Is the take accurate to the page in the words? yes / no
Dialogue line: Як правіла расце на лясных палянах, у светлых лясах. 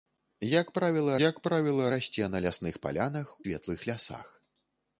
no